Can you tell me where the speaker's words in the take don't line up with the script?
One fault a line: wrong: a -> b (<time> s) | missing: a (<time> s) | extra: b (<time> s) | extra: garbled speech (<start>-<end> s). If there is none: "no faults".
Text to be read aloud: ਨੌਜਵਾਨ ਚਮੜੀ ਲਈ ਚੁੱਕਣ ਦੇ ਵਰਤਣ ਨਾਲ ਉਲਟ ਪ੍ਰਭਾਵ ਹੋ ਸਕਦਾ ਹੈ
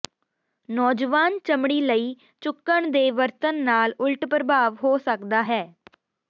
no faults